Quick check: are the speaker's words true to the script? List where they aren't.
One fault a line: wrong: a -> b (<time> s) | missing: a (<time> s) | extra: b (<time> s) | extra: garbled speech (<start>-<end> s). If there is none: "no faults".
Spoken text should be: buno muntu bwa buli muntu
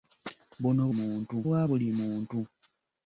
no faults